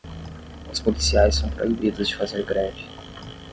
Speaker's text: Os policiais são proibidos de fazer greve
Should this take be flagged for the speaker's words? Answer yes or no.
no